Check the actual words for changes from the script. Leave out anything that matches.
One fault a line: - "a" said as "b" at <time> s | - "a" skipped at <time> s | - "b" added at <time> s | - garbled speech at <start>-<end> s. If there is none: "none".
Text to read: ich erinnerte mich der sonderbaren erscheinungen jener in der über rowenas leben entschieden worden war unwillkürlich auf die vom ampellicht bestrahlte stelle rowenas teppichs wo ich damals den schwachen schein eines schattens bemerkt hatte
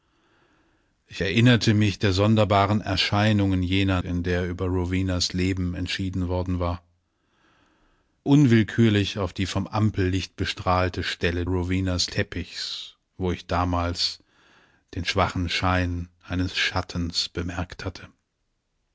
none